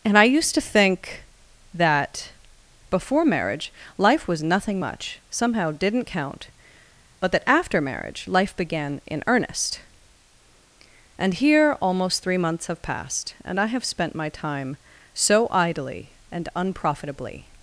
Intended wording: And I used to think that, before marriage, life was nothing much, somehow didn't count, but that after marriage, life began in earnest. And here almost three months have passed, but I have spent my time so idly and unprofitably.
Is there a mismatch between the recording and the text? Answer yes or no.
yes